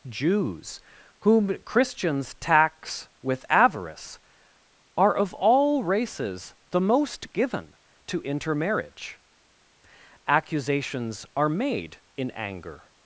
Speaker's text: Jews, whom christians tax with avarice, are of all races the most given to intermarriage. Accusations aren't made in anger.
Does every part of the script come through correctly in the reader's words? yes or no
no